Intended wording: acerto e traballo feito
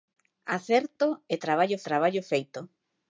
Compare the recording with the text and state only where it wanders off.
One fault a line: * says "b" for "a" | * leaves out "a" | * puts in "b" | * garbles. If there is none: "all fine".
* puts in "traballo"